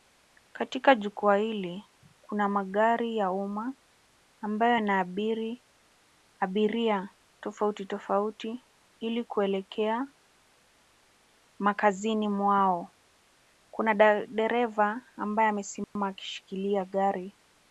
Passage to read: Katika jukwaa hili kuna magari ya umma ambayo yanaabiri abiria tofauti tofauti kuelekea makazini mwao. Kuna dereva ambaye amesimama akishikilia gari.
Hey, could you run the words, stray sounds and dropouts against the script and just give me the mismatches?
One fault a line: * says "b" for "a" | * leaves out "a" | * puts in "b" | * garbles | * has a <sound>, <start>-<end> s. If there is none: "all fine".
* puts in "ili"
* has a dropout, 15.8-16.0 s